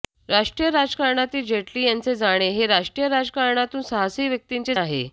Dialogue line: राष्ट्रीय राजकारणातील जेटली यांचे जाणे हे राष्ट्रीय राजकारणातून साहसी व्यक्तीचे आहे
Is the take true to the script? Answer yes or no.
yes